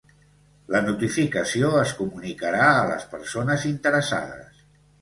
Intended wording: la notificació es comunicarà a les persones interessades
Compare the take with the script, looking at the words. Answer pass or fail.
pass